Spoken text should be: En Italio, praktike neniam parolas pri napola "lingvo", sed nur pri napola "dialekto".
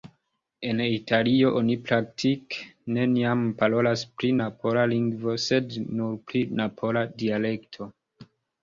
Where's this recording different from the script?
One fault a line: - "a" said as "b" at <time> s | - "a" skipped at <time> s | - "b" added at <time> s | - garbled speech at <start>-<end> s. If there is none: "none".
- "oni" added at 1.6 s